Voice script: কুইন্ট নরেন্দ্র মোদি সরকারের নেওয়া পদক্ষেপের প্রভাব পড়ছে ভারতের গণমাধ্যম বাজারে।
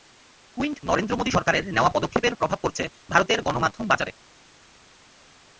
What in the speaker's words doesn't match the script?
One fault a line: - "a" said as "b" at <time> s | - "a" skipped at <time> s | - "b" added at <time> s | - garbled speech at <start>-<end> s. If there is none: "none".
none